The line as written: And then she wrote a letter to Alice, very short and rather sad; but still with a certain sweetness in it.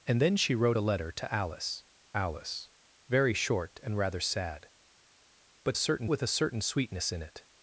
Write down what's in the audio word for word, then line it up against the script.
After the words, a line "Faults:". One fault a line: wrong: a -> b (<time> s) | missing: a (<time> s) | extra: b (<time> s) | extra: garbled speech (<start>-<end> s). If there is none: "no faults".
And then she wrote a letter to Alice Alice, very short and rather sad; but certain with a certain sweetness in it.
Faults:
extra: Alice (2.2 s)
wrong: still -> certain (5.7 s)